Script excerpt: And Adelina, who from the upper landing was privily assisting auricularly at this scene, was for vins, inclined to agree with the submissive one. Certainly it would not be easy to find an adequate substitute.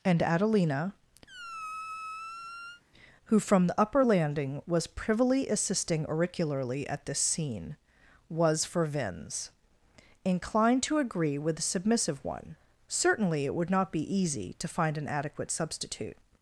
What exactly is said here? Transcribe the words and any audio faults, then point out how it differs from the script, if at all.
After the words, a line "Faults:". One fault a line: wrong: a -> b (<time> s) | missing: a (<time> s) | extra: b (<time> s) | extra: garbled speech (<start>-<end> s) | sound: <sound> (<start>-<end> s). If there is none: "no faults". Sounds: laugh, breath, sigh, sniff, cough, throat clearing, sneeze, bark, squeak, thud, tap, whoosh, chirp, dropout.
And Adelina, who from the upper landing was privily assisting auricularly at this scene, was for vins, inclined to agree with the submissive one. Certainly it would not be easy to find an adequate substitute.
Faults:
sound: squeak (1.3-2.8 s)